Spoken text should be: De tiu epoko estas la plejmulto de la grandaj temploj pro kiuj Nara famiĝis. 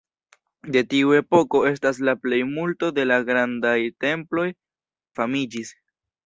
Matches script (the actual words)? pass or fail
fail